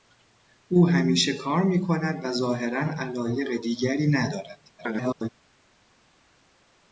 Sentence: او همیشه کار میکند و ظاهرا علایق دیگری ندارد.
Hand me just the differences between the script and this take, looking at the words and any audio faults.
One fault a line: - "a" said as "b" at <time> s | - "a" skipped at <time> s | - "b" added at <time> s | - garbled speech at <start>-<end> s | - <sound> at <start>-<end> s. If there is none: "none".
- garbled speech at 4.8-5.3 s